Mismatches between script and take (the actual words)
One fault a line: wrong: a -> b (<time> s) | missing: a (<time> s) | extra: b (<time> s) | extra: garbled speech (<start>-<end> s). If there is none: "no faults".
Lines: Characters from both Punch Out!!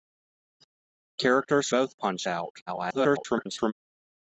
missing: from (1.7 s)
extra: garbled speech (2.7-3.7 s)